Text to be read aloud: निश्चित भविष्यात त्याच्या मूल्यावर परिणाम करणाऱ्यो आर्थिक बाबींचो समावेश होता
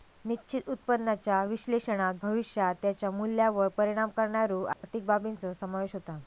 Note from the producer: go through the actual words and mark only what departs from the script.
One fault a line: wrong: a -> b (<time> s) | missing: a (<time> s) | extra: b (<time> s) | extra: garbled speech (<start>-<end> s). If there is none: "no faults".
extra: उत्पन्नाच्या विश्लेषणात (0.7 s)